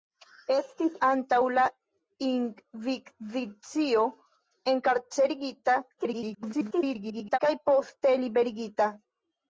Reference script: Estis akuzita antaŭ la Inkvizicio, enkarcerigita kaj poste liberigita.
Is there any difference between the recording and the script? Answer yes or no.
yes